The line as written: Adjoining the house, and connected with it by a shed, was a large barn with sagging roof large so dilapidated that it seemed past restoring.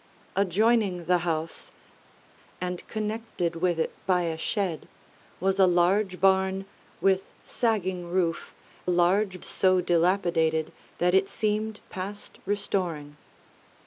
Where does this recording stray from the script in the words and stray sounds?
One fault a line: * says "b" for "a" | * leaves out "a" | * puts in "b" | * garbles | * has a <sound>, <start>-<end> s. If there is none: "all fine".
all fine